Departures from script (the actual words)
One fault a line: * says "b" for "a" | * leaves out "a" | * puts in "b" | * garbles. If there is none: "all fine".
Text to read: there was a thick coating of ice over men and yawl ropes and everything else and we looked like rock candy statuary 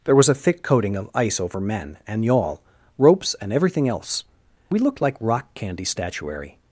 * leaves out "and"